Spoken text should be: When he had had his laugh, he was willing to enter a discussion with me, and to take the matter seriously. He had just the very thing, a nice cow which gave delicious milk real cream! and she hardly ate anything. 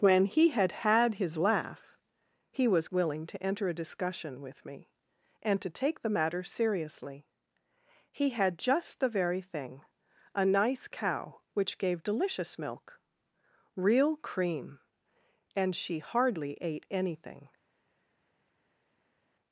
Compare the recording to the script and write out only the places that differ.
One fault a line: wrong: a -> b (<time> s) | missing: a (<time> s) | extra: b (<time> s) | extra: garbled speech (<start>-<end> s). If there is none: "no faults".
no faults